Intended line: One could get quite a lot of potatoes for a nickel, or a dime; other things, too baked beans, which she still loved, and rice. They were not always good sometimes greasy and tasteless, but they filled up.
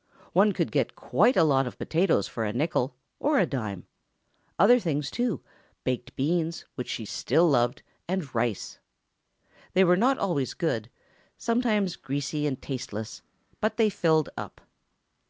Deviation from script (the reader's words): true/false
false